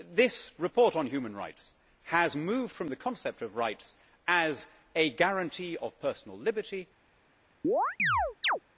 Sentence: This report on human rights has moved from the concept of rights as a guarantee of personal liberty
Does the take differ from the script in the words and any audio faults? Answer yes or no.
yes